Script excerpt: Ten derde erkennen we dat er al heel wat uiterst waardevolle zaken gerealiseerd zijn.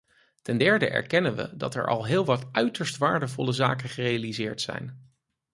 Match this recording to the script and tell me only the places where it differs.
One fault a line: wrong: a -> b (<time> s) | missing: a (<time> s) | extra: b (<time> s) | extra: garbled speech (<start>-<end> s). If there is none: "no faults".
no faults